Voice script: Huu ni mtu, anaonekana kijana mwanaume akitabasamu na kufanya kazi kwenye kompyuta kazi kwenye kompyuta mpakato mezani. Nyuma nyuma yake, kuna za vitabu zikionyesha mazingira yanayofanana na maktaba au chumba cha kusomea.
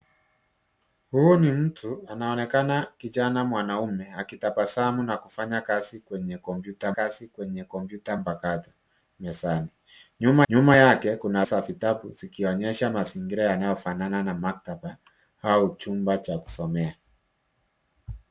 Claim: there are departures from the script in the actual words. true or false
false